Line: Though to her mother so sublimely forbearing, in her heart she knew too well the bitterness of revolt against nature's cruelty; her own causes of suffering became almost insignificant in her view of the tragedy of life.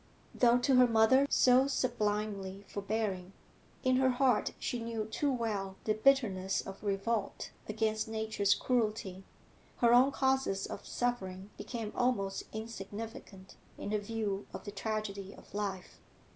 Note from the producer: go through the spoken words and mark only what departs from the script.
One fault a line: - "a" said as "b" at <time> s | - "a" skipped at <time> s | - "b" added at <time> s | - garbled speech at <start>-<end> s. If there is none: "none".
none